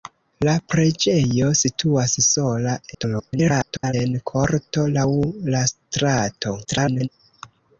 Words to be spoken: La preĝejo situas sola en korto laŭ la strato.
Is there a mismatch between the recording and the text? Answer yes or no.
yes